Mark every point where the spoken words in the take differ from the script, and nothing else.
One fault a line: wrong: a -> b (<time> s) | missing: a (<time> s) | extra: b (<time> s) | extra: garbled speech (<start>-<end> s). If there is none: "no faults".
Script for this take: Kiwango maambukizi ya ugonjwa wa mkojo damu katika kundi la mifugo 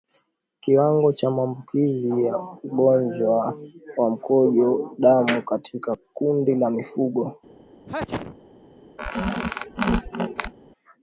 extra: cha (1.1 s)